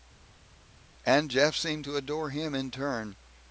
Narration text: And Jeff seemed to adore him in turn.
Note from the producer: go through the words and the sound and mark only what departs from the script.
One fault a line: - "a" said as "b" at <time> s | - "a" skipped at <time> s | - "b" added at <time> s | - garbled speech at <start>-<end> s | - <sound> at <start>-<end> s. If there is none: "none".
none